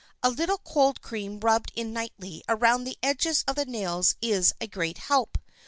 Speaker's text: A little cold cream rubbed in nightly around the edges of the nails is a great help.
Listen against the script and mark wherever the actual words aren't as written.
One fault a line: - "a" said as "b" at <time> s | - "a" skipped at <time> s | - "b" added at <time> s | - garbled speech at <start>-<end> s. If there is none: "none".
none